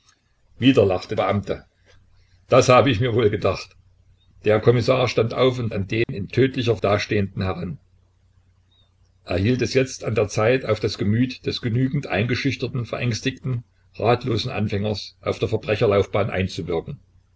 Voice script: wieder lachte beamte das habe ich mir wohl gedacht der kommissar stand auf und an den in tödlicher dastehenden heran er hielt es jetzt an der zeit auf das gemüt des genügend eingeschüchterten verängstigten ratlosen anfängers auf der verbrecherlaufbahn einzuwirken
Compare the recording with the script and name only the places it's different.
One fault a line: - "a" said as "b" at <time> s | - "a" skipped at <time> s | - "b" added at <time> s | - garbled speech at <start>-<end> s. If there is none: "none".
none